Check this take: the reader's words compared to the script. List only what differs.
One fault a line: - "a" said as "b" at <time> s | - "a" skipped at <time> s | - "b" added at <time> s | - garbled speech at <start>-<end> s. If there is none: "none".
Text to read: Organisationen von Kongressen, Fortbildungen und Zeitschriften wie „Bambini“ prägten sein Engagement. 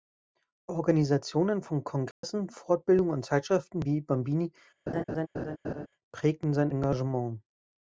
none